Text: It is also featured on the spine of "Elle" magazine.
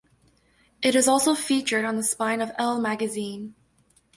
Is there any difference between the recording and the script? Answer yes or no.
no